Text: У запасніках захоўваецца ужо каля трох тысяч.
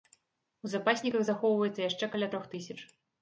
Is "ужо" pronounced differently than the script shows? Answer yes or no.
yes